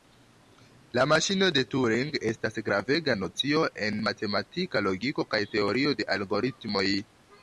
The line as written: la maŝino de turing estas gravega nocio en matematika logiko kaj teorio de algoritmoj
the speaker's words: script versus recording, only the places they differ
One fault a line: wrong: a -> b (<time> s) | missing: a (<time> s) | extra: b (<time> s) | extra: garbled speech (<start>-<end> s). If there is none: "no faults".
no faults